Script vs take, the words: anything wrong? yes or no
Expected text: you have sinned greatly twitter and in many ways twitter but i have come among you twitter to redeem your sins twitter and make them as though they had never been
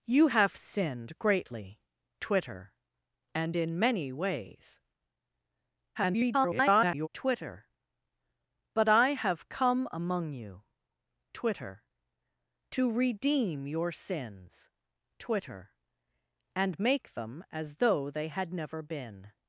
yes